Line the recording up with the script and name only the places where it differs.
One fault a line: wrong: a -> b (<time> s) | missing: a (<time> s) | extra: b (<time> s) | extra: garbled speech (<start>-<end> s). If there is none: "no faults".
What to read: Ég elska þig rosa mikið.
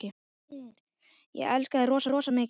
extra: rosa (2.1 s)